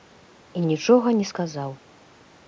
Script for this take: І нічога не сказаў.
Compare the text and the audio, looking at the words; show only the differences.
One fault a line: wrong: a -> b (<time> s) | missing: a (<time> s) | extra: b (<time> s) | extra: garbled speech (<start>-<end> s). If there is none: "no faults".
no faults